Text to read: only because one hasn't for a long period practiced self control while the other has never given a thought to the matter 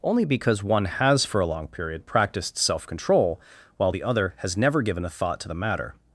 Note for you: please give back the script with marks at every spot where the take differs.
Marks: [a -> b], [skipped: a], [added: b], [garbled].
only because one [hasn't -> has] for a long period practiced self control while the other has never given a thought to the matter